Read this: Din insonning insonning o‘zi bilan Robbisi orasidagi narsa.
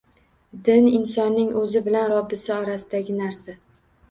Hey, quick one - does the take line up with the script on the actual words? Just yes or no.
no